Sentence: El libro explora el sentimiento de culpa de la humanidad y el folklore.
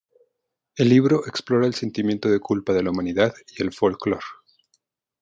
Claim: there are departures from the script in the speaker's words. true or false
false